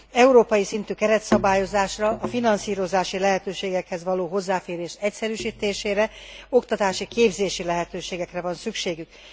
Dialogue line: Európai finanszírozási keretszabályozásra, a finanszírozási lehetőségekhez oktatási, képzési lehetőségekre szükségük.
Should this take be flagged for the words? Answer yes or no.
yes